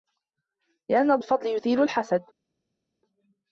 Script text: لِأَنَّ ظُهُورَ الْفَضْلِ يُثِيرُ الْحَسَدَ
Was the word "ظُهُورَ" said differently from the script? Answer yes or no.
yes